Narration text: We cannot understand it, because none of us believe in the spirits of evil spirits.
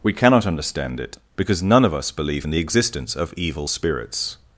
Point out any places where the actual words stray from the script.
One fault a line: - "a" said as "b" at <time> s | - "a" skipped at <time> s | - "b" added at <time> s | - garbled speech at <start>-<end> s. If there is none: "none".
- "spirits" said as "existence" at 2.6 s